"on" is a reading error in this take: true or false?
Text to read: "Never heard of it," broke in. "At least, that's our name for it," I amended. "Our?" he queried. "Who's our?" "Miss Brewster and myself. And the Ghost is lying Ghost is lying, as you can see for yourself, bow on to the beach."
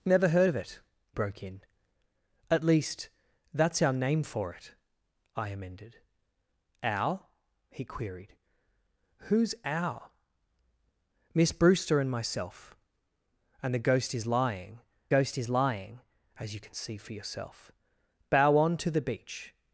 false